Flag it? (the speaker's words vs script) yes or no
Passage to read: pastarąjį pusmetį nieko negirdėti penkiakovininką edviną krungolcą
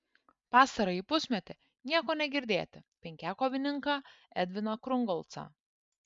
no